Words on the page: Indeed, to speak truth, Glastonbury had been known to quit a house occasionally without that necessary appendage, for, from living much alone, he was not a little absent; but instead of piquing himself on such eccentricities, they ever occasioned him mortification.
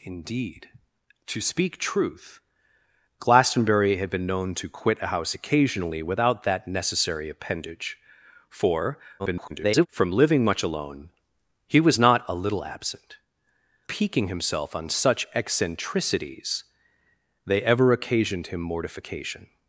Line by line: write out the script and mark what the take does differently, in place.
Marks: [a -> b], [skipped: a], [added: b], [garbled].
Indeed, to speak truth, Glastonbury had been known to quit a house occasionally without that necessary appendage, for, [garbled] from living much alone, he was not a little absent; [skipped: but instead of] piquing himself on such eccentricities, they ever occasioned him mortification.